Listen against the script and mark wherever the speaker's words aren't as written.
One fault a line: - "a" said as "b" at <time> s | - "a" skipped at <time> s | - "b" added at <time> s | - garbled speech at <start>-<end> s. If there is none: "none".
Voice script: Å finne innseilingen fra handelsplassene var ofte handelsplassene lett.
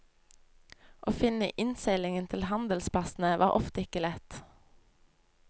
- "fra" said as "til" at 2.3 s
- "handelsplassene" said as "ikke" at 3.9 s